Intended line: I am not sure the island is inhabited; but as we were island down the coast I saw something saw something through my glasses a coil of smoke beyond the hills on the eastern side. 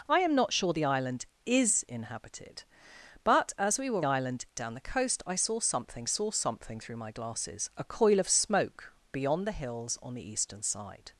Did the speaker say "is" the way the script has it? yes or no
yes